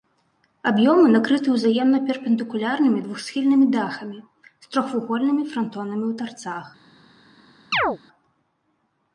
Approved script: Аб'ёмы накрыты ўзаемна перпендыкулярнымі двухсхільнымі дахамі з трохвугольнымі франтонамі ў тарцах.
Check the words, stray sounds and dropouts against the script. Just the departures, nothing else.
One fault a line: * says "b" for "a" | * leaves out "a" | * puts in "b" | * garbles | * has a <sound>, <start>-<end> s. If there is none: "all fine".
* has a chirp, 7.7-8.0 s